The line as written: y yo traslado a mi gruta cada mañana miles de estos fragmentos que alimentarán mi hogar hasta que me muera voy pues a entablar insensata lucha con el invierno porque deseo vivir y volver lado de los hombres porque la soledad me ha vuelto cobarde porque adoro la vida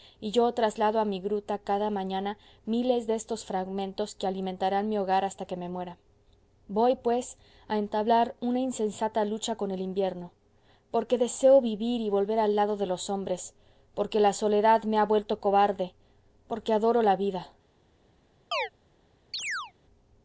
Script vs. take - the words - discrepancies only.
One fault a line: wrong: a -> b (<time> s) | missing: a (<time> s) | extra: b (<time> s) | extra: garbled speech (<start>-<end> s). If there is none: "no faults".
extra: una (8.4 s)
extra: al (12.4 s)